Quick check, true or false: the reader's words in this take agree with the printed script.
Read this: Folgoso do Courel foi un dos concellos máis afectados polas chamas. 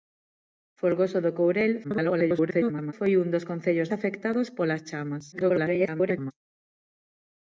false